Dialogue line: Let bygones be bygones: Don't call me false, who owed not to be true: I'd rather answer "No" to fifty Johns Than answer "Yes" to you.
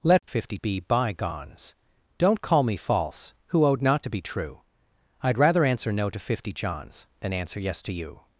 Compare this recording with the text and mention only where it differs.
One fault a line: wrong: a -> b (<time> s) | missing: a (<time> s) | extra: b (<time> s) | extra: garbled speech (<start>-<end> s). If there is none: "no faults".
wrong: bygones -> fifty (0.2 s)